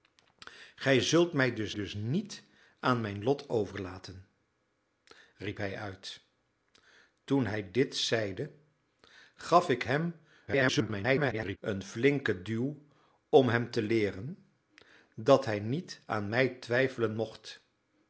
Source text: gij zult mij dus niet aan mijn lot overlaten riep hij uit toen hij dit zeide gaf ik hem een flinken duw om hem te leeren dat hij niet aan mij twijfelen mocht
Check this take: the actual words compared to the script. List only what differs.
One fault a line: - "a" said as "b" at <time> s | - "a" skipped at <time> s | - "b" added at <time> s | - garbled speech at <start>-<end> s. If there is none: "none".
- "dus" added at 1.7 s
- garbled speech at 10.5-11.6 s